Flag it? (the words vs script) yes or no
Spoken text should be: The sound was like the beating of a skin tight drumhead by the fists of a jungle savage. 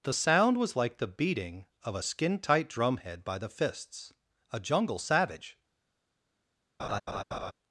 yes